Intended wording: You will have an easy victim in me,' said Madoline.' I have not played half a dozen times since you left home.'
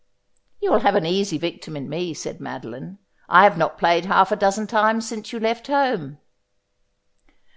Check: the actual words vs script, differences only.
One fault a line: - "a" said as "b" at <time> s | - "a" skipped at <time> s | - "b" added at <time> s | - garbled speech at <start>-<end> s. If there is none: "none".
none